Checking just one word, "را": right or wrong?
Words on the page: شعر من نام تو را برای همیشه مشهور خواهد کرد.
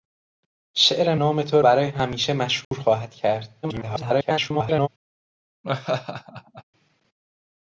wrong